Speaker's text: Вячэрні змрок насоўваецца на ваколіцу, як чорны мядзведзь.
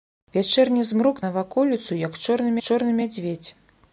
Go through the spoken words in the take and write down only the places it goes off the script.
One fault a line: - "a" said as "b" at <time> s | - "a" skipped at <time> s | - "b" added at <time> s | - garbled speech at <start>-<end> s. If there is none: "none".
- "насоўваецца" skipped at 1.2 s
- "чорны" added at 2.7 s